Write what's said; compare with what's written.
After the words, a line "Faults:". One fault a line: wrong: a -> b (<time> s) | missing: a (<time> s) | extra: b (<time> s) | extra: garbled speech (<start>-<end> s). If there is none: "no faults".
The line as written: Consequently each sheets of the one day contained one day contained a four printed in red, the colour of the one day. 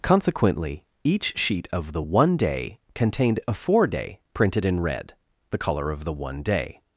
Consequently each sheet of the one day contained a four day printed in red, the colour of the one day.
Faults:
wrong: sheets -> sheet (1.4 s)
missing: one day contained (3.4 s)
extra: day (3.9 s)